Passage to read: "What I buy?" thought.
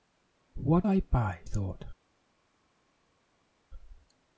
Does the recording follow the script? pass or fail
pass